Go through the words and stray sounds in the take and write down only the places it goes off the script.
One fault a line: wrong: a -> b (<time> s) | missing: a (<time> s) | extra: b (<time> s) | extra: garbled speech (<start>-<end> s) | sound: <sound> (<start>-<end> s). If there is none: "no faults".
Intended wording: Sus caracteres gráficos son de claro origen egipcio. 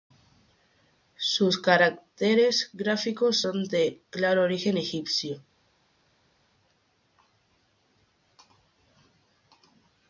no faults